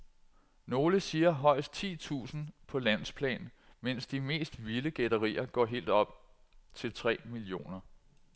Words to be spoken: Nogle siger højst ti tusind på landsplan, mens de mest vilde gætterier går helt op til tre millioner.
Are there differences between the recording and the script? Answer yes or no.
no